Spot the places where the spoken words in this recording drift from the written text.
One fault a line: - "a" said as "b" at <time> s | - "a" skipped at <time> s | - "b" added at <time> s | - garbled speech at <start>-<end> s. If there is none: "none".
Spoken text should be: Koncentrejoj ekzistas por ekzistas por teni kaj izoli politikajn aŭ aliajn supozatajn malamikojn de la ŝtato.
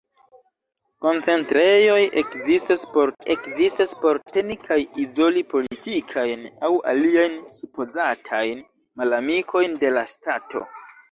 none